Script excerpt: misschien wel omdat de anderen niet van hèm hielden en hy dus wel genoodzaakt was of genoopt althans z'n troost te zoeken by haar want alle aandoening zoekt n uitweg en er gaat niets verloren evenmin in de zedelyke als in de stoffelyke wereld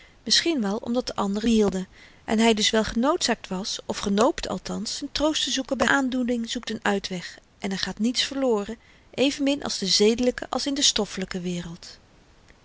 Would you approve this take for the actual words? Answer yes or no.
no